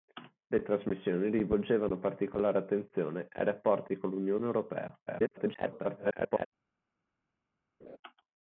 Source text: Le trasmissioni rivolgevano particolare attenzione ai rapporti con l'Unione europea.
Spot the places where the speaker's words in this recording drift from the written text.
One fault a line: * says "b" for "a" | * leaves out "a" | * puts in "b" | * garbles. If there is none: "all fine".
* garbles